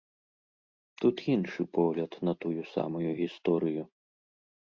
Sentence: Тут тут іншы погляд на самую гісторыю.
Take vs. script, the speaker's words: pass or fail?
fail